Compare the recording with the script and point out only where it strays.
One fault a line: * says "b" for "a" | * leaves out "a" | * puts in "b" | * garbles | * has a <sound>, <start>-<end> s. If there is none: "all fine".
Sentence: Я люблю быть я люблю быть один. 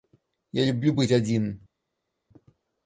* leaves out "я люблю быть"